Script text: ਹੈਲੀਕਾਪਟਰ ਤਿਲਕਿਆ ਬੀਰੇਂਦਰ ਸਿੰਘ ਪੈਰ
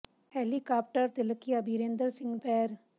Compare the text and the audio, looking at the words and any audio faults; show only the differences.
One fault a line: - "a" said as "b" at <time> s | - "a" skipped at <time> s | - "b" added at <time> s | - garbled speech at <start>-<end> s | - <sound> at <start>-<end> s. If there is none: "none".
none